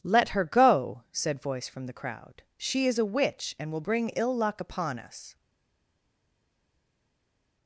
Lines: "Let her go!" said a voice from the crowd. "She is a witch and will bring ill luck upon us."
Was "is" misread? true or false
false